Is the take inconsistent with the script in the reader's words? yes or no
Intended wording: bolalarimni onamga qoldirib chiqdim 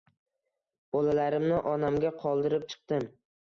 no